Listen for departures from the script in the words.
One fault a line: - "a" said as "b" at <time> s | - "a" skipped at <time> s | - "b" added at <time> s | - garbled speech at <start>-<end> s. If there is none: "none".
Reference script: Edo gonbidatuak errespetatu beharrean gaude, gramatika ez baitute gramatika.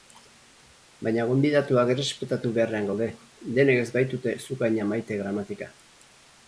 - "Edo" said as "Baina" at 1.1 s
- "gramatika" said as "denek" at 3.6 s
- "zuk haina maite" added at 4.5 s